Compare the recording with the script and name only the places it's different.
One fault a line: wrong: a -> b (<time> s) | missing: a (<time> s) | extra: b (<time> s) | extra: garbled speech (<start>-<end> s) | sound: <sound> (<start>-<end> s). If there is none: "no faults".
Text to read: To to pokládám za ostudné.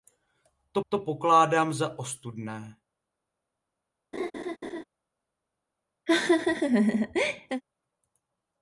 sound: laugh (4.1-4.8 s)
sound: laugh (6.1-7.6 s)